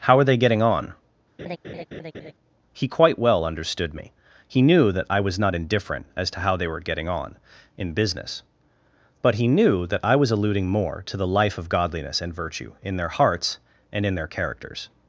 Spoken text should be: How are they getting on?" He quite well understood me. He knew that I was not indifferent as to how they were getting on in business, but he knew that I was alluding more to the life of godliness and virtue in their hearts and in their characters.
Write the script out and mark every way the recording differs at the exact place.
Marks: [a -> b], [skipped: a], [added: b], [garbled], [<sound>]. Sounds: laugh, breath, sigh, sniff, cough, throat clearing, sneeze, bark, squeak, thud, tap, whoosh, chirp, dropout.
How are they getting on?" [laugh] He quite well understood me. He knew that I was not indifferent as to how they were getting on in business, but he knew that I was alluding more to the life of godliness and virtue in their hearts and in their characters.